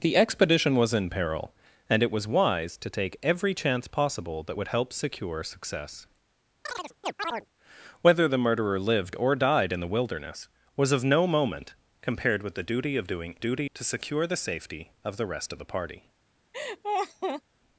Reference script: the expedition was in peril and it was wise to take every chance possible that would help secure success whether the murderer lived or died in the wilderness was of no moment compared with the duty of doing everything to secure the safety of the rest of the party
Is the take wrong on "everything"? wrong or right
wrong